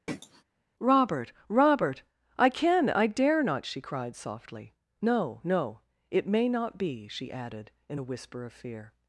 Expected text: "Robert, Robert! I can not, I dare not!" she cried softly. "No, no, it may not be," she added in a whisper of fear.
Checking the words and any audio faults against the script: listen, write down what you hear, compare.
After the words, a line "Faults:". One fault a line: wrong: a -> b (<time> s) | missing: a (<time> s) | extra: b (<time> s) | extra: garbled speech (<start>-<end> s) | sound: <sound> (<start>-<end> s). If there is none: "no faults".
"Robert, Robert! I can I dare not!" she cried softly. "No, no, it may not be," she added in a whisper of fear.
Faults:
sound: throat clearing (0.1-0.4 s)
missing: not (2.9 s)